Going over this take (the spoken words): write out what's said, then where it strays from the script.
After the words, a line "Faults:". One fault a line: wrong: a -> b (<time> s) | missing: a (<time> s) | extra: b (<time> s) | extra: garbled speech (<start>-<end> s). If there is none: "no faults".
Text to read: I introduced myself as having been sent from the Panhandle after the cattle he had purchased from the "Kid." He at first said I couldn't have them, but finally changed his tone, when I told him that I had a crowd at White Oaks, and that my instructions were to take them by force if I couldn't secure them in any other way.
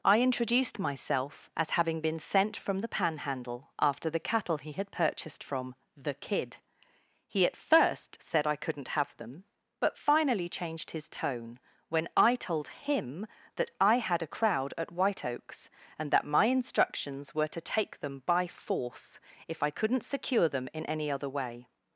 I introduced myself as having been sent from the Panhandle after the cattle he had purchased from the "Kid." He at first said I couldn't have them, but finally changed his tone, when I told him that I had a crowd at White Oaks, and that my instructions were to take them by force if I couldn't secure them in any other way.
Faults:
no faults